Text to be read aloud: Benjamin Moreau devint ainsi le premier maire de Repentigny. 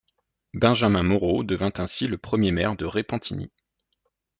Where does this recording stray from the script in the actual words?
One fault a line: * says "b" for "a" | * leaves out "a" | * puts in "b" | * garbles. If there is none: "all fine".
all fine